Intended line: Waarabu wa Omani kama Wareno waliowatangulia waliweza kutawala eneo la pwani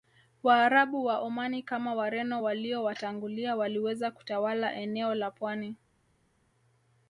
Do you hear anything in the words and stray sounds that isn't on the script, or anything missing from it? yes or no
no